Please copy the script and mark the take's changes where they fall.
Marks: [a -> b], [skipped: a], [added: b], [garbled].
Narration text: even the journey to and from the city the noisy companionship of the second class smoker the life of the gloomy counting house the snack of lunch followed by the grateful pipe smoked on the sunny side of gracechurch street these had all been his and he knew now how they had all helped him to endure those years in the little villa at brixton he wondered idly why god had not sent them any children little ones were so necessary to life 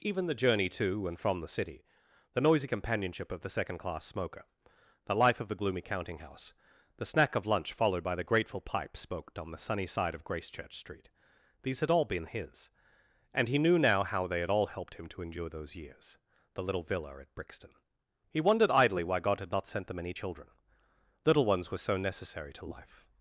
even the journey to and from the city the noisy companionship of the second class smoker the life of the gloomy counting house the snack of lunch followed by the grateful pipe smoked on the sunny side of gracechurch street these had all been his and he knew now how they had all helped him to endure those years [skipped: in] the little villa at brixton he wondered idly why god had not sent them any children little ones were so necessary to life